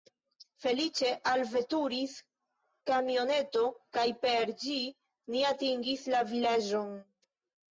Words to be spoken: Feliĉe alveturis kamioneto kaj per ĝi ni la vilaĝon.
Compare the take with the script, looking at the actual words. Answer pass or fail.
fail